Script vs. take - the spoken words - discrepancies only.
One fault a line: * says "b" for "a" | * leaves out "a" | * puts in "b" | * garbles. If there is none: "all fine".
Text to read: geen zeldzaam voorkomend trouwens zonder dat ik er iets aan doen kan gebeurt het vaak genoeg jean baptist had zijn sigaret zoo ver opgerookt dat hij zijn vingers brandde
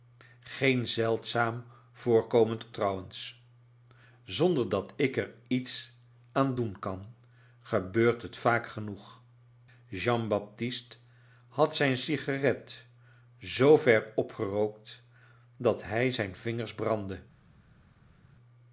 all fine